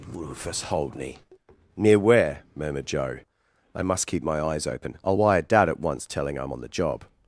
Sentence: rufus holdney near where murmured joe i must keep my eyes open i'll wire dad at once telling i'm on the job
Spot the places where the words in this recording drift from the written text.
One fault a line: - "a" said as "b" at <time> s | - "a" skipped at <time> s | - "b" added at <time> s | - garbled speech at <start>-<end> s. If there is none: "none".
none